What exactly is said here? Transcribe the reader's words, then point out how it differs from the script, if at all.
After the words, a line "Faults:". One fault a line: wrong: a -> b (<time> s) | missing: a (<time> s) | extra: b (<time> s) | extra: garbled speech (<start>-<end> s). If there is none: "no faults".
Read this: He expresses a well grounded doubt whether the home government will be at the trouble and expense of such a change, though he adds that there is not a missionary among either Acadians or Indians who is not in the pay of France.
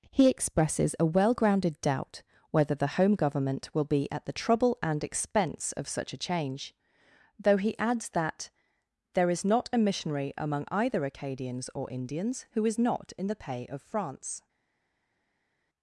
He expresses a well grounded doubt whether the home government will be at the trouble and expense of such a change, though he adds that there is not a missionary among either Acadians or Indians who is not in the pay of France.
Faults:
no faults